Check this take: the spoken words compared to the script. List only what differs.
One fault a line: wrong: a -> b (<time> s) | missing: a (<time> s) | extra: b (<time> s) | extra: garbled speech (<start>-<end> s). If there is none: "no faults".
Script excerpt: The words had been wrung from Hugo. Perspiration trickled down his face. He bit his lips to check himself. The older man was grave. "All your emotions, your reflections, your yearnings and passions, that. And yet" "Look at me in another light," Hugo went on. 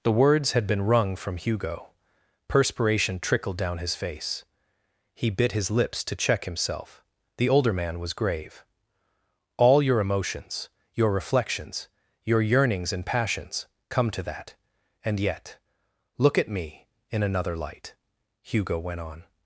extra: come to (13.9 s)